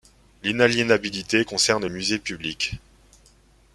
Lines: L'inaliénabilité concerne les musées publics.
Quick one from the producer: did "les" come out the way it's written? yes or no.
no